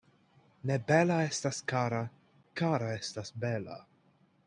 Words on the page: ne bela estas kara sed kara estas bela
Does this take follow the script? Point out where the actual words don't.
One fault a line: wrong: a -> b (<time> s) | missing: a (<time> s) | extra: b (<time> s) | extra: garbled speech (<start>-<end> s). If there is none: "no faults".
missing: sed (2.0 s)